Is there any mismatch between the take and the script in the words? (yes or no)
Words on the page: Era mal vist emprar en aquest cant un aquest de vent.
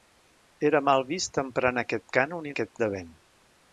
no